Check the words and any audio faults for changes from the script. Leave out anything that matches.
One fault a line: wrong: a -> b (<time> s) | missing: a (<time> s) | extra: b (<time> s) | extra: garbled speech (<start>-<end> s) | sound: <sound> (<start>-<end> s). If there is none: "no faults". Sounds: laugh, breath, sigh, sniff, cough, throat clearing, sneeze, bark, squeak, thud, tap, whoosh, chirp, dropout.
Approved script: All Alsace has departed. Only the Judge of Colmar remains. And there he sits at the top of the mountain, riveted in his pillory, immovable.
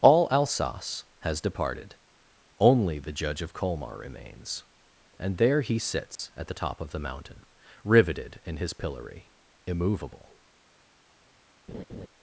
sound: dropout (6.2-6.2 s)
sound: laugh (11.7-12.1 s)